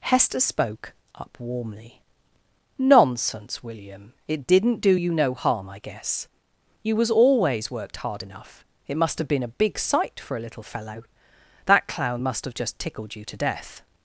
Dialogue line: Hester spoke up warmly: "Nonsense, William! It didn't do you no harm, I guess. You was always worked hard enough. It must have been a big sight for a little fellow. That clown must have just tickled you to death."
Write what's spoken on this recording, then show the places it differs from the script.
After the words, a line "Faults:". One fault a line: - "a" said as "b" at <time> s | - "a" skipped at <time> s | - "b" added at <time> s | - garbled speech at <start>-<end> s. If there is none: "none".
Hester spoke up warmly: "Nonsense, William! It didn't do you no harm, I guess. You was always worked hard enough. It must have been a big sight for a little fellow. That clown must have just tickled you to death."
Faults:
none